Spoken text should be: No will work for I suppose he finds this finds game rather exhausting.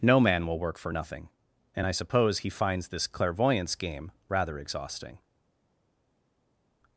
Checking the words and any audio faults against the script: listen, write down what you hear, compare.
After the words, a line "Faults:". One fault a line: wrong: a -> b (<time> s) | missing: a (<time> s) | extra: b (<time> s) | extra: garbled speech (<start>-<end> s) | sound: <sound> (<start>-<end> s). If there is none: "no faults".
No man will work for nothing, and I suppose he finds this clairvoyance game rather exhausting.
Faults:
extra: man (0.2 s)
extra: nothing and (0.9 s)
wrong: finds -> clairvoyance (3.1 s)